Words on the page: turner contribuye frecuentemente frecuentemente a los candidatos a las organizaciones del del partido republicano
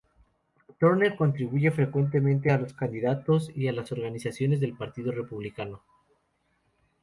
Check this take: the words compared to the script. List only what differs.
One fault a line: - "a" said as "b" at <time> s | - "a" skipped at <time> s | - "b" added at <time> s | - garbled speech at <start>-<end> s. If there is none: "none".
- "frecuentemente" skipped at 2.5 s
- "y" added at 3.5 s
- "del" skipped at 4.8 s